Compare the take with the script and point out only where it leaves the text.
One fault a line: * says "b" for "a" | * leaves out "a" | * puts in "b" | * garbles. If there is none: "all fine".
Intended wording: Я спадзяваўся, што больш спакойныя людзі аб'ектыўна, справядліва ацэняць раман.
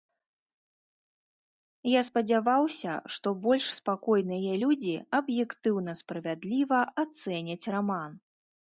all fine